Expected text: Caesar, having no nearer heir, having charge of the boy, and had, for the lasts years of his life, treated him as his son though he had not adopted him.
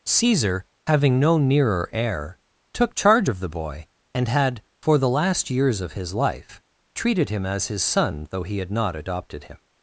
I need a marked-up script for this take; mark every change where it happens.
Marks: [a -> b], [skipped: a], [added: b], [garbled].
Caesar, having no nearer heir, [having -> took] charge of the boy, and had, for the [lasts -> last] years of his life, treated him as his son though he had not adopted him.